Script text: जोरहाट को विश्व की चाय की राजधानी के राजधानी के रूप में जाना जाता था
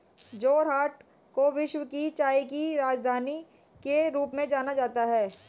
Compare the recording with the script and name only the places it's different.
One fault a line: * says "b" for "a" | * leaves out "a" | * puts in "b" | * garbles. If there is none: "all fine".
* leaves out "राजधानी के"
* says "है" for "था"